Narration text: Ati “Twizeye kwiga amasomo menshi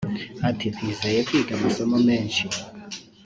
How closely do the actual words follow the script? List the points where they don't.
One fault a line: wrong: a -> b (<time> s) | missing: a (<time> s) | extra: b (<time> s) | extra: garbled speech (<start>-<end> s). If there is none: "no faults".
no faults